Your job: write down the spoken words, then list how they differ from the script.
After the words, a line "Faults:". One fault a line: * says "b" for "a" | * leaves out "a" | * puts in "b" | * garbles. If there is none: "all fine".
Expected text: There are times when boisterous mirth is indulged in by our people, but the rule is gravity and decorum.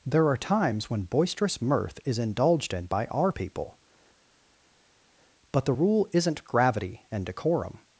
There are times when boisterous mirth is indulged in by our people, but the rule isn't gravity and decorum.
Faults:
* says "isn't" for "is"